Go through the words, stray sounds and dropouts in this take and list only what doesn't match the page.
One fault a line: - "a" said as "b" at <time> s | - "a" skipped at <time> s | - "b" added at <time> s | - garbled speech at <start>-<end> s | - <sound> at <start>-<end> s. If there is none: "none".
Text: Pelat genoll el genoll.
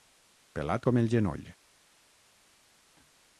- "genoll" said as "com" at 0.9 s